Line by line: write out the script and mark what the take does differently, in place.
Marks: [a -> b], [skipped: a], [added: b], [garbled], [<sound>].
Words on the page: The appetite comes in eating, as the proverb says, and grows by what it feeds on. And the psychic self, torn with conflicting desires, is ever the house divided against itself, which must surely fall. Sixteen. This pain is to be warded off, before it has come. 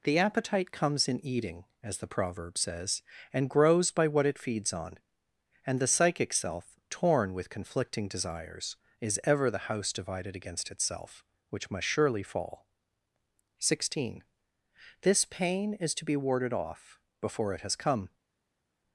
The appetite comes in eating, as the proverb says, and grows by what it feeds on. And the psychic self, torn with conflicting desires, is ever the house divided against itself, which must surely fall. Sixteen. This pain is to be warded off, before it has come.